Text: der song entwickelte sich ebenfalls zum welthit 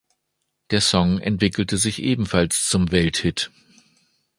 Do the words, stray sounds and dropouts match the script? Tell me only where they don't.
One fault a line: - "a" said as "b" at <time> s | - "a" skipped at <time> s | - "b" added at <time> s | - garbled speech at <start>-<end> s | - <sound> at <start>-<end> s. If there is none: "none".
none